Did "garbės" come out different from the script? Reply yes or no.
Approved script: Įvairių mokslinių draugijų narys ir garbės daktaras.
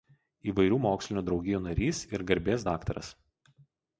no